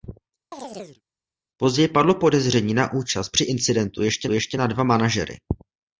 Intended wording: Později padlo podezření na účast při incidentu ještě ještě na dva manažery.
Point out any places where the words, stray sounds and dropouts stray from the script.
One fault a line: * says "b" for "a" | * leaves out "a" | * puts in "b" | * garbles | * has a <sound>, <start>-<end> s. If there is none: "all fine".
* has a chirp, 0.5-1.0 s